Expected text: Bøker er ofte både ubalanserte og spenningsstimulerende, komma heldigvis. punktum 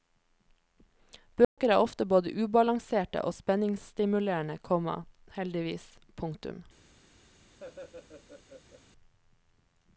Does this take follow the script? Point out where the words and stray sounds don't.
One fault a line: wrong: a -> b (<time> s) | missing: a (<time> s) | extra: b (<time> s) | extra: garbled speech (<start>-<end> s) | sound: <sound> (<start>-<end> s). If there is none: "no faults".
sound: dropout (1.4-1.6 s)
sound: laugh (7.6-8.8 s)